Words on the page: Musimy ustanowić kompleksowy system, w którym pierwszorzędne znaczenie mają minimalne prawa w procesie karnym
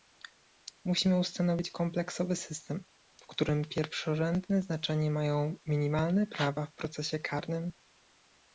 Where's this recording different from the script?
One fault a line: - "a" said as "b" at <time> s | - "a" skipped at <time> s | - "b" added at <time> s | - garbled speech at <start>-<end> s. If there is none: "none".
none